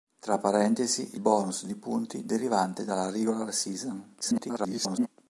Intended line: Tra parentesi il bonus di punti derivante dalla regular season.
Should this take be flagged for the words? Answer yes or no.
yes